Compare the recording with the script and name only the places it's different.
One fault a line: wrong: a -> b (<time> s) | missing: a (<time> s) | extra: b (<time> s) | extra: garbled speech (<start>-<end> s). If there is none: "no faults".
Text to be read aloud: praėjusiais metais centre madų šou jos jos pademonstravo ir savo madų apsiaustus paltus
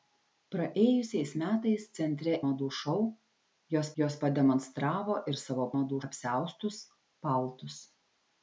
no faults